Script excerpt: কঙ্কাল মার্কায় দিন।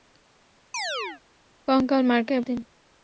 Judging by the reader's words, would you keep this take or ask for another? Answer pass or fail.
pass